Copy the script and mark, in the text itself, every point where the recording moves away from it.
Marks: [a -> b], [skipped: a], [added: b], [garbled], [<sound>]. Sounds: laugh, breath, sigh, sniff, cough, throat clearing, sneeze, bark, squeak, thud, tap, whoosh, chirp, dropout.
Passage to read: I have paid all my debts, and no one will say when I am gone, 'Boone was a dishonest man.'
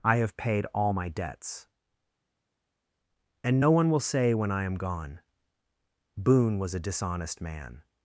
I have paid all my debts, and no one will say when I am gone, 'Boone was a dishonest man.'